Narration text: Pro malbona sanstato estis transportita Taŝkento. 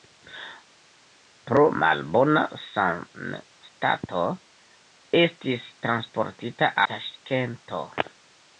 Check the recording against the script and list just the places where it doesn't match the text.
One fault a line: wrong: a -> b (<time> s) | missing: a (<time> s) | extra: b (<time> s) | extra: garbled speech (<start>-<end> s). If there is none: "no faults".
no faults